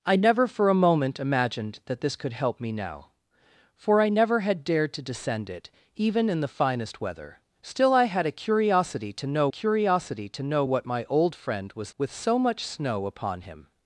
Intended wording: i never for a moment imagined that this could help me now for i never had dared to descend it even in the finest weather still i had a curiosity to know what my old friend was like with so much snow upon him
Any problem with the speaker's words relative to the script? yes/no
yes